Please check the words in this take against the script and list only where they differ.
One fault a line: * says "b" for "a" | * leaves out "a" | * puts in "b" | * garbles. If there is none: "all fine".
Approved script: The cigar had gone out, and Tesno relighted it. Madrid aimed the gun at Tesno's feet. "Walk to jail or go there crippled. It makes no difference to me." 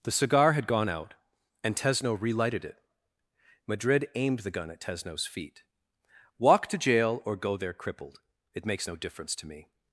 all fine